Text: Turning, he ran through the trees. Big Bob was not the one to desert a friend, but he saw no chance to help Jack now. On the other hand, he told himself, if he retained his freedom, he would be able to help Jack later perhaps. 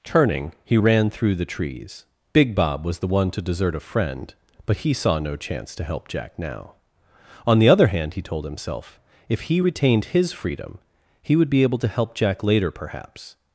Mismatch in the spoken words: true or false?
true